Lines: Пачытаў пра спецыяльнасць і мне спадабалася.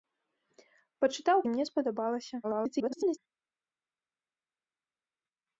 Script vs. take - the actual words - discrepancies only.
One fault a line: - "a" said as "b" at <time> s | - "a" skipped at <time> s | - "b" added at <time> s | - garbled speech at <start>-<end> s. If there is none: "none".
- "пра спецыяльнасць" skipped at 1.4 s
- garbled speech at 2.4-3.2 s